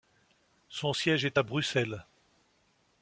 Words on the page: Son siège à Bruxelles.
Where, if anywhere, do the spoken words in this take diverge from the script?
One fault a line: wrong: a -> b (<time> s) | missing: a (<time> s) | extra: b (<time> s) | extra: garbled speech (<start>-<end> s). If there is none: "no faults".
extra: est (1.3 s)